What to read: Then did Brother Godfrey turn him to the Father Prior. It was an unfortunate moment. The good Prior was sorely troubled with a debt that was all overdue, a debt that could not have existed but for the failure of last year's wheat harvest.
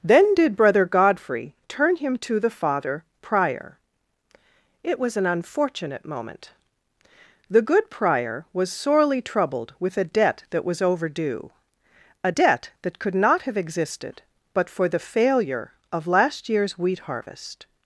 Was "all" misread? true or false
true